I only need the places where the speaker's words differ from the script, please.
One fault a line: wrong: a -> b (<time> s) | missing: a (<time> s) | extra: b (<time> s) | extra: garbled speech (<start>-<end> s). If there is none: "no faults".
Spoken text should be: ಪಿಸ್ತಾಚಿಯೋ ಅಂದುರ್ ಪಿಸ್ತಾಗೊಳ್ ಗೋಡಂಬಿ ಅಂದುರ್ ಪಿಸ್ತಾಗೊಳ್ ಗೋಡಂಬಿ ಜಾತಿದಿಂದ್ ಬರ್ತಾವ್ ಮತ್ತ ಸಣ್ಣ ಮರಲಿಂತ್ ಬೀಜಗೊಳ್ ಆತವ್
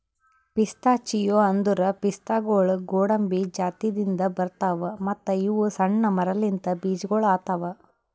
missing: ಅಂದುರ್ ಪಿಸ್ತಾಗೊಳ್ ಗೋಡಂಬಿ (3.4 s)
extra: ಇವು (5.4 s)